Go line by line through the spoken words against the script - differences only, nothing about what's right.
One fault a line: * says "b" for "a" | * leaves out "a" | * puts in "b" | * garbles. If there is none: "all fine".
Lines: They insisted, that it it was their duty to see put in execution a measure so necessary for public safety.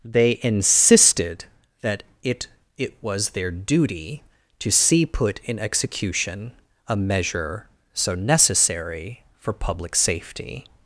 all fine